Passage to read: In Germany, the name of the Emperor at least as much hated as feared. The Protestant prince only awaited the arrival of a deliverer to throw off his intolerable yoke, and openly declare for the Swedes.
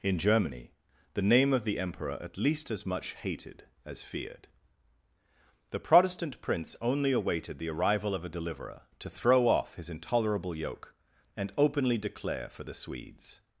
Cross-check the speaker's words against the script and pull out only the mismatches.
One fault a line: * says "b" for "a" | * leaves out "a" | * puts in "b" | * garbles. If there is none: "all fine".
all fine